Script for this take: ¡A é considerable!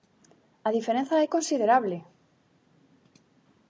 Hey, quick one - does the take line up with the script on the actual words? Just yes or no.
no